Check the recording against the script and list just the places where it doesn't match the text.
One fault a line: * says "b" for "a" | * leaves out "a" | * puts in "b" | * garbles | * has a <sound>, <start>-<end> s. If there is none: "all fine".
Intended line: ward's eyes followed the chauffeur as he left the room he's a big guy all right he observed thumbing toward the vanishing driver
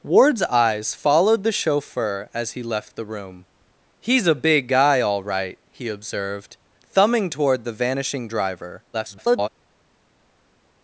* garbles